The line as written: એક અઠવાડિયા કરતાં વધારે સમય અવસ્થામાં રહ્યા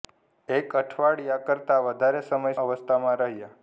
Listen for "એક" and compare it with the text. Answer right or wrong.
right